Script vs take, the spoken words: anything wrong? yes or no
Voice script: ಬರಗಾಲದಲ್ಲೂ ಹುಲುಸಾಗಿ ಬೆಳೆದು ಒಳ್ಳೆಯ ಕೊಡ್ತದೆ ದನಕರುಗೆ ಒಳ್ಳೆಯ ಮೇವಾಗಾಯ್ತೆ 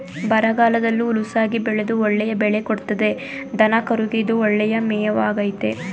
yes